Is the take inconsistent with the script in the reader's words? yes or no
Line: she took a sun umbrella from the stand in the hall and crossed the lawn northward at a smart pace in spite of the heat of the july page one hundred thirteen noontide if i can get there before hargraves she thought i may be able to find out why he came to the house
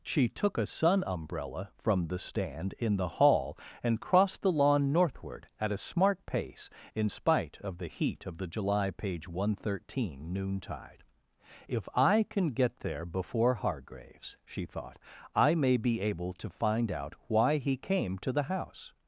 no